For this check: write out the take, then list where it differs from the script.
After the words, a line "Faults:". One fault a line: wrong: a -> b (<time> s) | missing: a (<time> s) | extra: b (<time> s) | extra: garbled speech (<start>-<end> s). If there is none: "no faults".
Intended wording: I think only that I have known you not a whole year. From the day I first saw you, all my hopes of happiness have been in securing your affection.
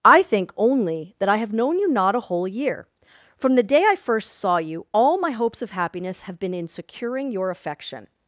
I think only that I have known you not a whole year. From the day I first saw you, all my hopes of happiness have been in securing your affection.
Faults:
no faults